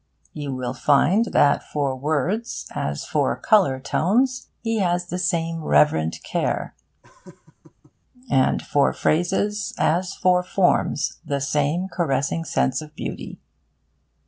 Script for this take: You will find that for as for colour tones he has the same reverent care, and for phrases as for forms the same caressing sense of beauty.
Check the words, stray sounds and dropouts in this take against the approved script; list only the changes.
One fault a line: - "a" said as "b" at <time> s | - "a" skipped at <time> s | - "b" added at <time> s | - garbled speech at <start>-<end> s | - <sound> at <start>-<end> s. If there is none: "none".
- "words" added at 1.9 s
- laugh at 7.0-7.9 s